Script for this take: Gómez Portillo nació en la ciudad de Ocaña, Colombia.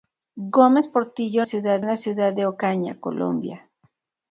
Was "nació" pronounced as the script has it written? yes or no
no